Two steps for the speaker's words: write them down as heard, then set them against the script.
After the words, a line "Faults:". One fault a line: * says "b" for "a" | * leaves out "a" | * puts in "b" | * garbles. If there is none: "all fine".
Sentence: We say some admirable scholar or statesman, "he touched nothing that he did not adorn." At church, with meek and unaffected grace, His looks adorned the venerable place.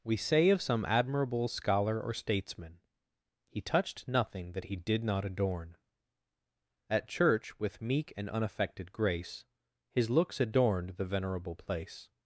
We say of some admirable scholar or statesman, "he touched nothing that he did not adorn." At church, with meek and unaffected grace, His looks adorned the venerable place.
Faults:
* puts in "of"